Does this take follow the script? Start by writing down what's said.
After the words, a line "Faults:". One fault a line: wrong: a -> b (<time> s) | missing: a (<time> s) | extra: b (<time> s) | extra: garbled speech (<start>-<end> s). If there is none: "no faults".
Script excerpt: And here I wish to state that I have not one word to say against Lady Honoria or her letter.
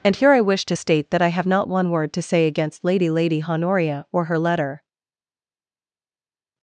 And here I wish to state that I have not one word to say against Lady Lady Honoria or her letter.
Faults:
extra: Lady (3.1 s)